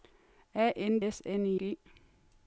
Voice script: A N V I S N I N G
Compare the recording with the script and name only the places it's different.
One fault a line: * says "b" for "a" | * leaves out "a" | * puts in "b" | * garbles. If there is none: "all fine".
* leaves out "V I"
* leaves out "N"